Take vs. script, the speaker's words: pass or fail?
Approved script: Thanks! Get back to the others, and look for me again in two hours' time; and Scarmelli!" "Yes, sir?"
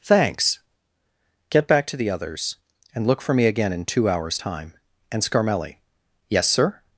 pass